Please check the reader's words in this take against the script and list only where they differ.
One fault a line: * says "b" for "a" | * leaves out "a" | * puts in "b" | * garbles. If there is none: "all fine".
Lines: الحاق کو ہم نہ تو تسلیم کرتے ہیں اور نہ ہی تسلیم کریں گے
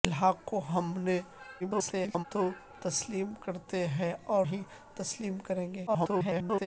* garbles
* leaves out "نہ"
* garbles